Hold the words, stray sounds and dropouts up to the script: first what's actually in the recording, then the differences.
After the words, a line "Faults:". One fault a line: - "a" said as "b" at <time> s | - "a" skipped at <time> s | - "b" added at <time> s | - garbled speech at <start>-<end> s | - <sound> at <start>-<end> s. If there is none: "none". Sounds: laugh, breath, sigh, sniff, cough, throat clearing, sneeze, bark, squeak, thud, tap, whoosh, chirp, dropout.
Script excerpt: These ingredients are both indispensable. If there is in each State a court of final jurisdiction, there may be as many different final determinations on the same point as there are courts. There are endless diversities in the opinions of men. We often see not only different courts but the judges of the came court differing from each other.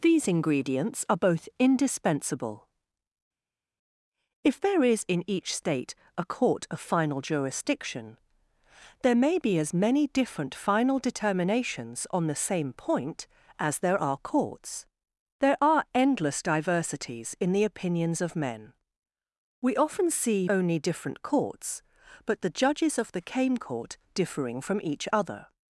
These ingredients are both indispensable. If there is in each State a court of final jurisdiction, there may be as many different final determinations on the same point as there are courts. There are endless diversities in the opinions of men. We often see only different courts but the judges of the came court differing from each other.
Faults:
- "not" skipped at 20.5 s